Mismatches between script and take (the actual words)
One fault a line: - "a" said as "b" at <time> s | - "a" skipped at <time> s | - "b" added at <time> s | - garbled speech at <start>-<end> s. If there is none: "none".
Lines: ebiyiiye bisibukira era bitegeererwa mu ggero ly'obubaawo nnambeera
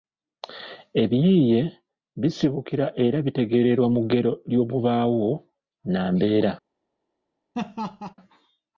none